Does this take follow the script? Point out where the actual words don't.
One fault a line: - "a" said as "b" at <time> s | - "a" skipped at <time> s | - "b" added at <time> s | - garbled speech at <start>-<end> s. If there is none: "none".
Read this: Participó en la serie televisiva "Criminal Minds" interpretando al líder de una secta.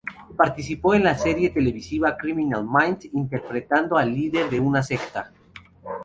none